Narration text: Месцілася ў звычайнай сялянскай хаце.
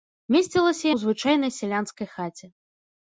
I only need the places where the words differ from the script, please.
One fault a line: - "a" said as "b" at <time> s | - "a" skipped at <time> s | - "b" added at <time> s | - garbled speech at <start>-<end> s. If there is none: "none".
none